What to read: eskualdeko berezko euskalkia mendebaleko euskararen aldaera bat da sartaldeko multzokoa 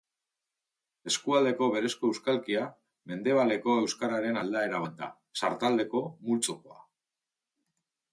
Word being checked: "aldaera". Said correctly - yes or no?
yes